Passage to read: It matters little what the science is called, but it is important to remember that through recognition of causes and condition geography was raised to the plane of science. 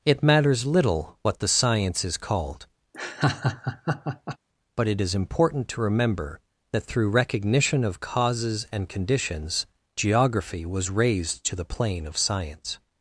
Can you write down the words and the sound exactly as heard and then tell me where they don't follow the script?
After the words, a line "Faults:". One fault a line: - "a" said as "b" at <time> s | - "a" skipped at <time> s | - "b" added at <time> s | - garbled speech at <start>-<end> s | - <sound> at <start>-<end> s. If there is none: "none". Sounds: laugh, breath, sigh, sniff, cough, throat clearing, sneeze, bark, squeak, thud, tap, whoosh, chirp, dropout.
It matters little what the science is called, but it is important to remember that through recognition of causes and conditions geography was raised to the plane of science.
Faults:
- laugh at 2.9-4.4 s
- "condition" said as "conditions" at 8.9 s